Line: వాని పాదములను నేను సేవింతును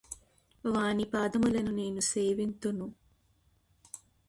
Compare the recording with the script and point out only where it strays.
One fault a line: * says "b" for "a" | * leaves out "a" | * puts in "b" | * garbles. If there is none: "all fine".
all fine